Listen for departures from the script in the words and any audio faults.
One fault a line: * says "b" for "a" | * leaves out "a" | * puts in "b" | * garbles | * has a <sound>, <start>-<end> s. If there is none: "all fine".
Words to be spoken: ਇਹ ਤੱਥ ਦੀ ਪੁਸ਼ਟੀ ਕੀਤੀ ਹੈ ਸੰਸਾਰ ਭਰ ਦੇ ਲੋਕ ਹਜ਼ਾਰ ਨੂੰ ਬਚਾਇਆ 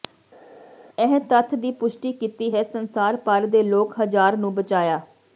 all fine